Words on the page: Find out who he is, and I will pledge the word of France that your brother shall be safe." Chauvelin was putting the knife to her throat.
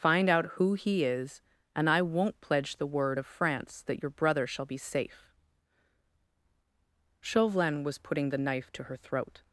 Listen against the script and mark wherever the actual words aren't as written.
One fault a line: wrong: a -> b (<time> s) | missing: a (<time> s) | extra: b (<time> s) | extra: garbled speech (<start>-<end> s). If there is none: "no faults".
wrong: will -> won't (2.0 s)